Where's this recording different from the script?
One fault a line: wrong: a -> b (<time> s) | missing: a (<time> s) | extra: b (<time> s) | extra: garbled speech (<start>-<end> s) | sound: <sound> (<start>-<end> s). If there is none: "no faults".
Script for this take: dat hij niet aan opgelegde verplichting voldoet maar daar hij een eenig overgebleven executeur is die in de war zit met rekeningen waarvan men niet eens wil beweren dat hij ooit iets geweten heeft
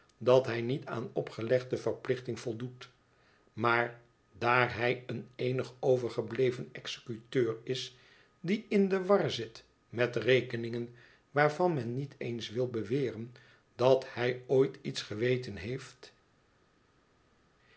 no faults